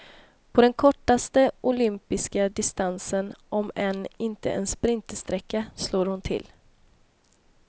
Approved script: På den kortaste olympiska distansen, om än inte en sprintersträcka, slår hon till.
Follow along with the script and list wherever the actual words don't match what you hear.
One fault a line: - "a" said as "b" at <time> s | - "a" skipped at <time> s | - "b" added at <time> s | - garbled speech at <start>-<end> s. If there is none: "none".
none